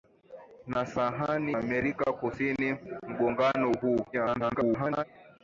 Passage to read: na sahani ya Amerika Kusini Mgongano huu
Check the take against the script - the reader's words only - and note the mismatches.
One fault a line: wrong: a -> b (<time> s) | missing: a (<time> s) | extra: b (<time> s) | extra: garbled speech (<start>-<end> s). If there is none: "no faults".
missing: ya (1.6 s)
extra: garbled speech (4.1-5.0 s)